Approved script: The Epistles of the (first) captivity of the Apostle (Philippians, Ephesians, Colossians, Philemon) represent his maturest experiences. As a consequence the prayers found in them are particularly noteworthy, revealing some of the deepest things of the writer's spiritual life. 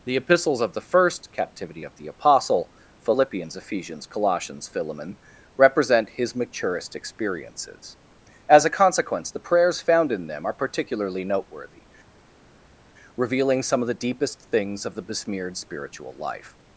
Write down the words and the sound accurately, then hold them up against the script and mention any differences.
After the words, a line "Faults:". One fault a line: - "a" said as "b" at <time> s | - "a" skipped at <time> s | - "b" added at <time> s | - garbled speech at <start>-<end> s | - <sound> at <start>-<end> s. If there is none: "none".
The Epistles of the (first) captivity of the Apostle (Philippians, Ephesians, Colossians, Philemon) represent his maturest experiences. As a consequence the prayers found in them are particularly noteworthy, revealing some of the deepest things of the besmeared spiritual life.
Faults:
- "writer's" said as "besmeared" at 15.0 s